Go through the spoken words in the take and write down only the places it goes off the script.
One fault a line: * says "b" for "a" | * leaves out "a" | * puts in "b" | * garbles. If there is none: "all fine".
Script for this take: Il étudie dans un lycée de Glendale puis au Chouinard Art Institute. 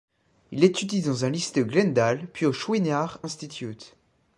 * leaves out "Art"